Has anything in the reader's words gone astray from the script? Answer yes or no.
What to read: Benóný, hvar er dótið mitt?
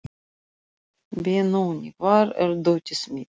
no